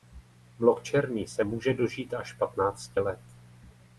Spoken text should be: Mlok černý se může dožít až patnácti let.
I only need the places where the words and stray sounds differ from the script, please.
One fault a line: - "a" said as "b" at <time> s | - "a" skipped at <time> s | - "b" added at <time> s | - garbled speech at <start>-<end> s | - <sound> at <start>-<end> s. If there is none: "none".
none